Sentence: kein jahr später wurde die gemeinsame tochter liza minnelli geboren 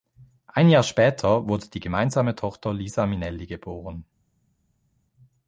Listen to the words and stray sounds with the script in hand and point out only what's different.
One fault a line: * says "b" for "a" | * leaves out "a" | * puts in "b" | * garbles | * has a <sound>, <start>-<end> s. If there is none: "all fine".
* says "ein" for "kein"